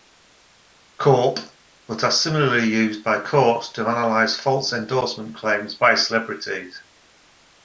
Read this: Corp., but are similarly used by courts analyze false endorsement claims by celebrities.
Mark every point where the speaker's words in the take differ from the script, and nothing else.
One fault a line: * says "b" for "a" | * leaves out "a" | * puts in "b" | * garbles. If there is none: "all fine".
* puts in "to"